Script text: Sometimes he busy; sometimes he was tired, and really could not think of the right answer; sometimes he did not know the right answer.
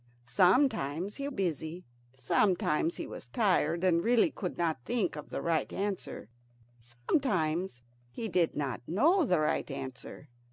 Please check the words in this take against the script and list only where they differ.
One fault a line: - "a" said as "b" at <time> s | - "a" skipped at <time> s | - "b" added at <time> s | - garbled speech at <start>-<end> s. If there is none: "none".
none